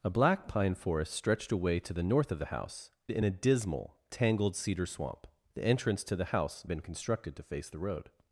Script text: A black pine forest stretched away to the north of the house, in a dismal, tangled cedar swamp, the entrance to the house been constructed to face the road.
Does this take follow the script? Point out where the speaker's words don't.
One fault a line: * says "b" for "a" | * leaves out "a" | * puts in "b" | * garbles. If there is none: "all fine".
all fine